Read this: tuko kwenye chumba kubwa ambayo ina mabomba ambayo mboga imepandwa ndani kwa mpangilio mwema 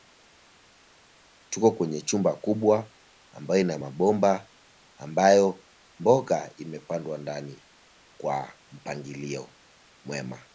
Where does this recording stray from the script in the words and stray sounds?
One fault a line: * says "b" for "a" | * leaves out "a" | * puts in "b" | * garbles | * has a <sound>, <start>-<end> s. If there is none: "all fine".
all fine